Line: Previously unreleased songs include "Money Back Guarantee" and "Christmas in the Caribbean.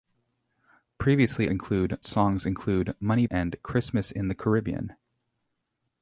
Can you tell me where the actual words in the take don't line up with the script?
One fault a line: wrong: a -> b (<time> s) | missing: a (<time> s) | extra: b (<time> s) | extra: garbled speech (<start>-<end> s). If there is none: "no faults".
wrong: unreleased -> include (1.5 s)
missing: Back Guarantee (3.2 s)